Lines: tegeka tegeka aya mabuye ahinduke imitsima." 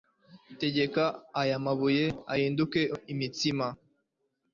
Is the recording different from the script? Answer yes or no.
yes